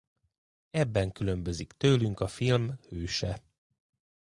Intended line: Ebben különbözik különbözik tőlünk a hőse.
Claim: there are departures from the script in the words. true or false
true